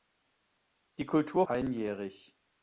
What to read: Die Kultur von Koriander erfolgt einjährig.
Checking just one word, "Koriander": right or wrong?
wrong